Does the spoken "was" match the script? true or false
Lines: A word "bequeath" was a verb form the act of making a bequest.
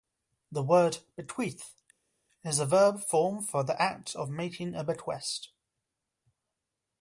false